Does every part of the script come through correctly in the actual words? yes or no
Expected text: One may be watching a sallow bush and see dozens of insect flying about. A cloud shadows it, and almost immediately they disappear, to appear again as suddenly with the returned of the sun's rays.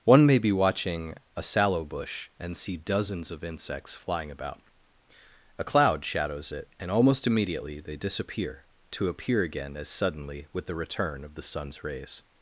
no